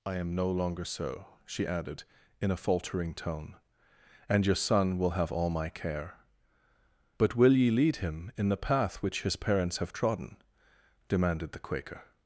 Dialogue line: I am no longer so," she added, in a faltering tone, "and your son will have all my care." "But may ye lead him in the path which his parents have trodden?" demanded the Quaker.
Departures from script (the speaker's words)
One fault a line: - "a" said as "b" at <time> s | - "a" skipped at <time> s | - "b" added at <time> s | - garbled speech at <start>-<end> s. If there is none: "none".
- "may" said as "will" at 7.3 s